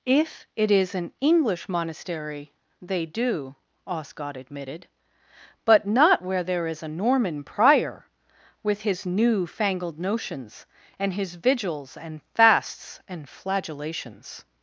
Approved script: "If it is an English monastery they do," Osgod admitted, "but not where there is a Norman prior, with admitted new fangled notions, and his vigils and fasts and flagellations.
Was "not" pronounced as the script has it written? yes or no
yes